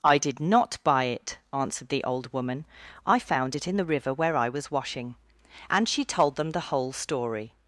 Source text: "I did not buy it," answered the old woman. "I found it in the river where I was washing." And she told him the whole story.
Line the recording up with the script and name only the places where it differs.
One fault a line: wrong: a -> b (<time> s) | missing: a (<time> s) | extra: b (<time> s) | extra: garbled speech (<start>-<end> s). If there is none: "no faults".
wrong: him -> them (6.4 s)